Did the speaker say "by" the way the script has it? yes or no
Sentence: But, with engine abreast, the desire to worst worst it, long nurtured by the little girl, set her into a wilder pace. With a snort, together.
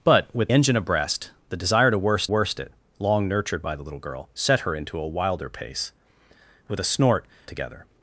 yes